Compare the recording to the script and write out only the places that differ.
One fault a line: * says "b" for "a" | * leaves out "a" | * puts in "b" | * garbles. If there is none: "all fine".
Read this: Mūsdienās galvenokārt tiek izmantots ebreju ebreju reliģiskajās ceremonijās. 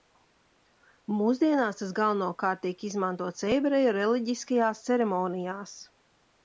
* puts in "tas"
* leaves out "ebreju"